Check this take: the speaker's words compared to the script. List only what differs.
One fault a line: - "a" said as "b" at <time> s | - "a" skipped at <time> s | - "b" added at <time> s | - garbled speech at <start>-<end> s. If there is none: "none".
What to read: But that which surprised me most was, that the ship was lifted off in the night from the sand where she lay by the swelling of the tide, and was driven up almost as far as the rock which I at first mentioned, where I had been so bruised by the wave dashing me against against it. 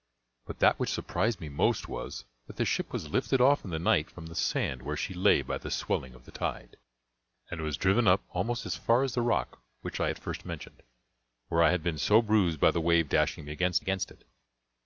none